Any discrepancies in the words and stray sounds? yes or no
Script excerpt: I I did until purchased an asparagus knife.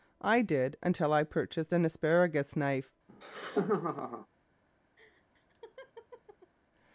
yes